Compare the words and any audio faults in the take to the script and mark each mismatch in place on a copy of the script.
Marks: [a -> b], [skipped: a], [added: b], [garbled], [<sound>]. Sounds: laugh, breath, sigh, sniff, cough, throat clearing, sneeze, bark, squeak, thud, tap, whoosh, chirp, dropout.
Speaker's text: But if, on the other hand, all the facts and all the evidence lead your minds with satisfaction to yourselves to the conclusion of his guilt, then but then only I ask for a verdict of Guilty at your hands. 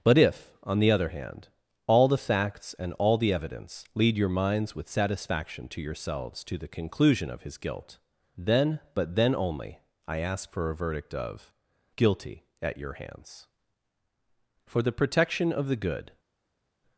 But if, on the other hand, all the facts and all the evidence lead your minds with satisfaction to yourselves to the conclusion of his guilt, then but then only I ask for a verdict of Guilty at your hands. [added: For the protection of the good]